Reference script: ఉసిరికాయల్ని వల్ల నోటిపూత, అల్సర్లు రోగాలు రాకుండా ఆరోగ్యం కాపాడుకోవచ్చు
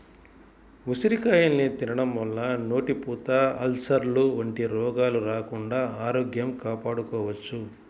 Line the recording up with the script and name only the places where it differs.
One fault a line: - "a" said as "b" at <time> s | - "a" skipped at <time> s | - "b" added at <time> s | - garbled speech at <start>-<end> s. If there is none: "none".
- "తినడం" added at 1.8 s
- "వంటి" added at 4.4 s